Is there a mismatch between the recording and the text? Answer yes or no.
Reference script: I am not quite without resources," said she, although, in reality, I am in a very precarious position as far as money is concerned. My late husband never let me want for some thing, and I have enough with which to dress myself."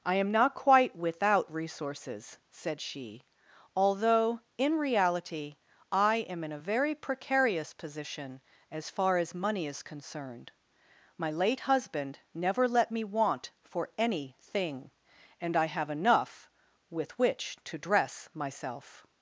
yes